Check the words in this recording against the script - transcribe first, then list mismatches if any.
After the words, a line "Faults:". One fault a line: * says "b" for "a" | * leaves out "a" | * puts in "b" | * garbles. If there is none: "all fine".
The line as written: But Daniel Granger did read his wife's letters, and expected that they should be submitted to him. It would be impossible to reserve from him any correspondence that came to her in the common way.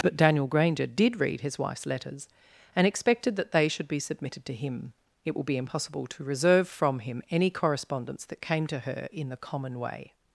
But Daniel Granger did read his wife's letters, and expected that they should be submitted to him. It will be impossible to reserve from him any correspondence that came to her in the common way.
Faults:
* says "will" for "would"